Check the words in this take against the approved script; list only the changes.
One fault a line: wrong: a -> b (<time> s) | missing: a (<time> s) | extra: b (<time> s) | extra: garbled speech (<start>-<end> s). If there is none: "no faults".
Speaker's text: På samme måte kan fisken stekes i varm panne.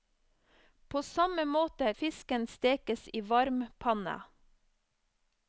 missing: kan (1.9 s)